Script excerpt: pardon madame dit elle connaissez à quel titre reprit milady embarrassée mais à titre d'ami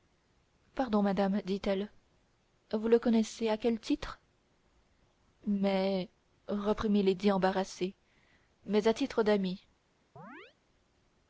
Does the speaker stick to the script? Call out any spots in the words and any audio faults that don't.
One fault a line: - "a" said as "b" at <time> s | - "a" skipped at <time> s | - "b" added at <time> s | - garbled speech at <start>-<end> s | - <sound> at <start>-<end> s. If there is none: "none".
- "vous le" added at 2.7 s
- "mais" added at 5.5 s
- chirp at 10.2-10.6 s